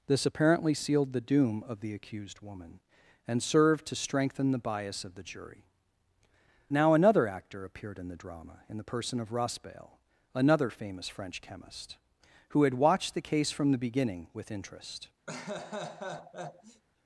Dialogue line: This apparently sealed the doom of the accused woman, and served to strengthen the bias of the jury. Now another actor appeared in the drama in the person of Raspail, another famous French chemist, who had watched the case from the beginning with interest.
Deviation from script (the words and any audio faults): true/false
true